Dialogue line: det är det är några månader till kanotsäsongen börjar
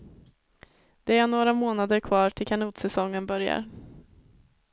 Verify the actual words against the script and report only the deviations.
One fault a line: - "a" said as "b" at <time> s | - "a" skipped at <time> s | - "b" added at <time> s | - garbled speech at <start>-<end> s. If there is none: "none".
- "det är" skipped at 1.3 s
- "kvar" added at 2.0 s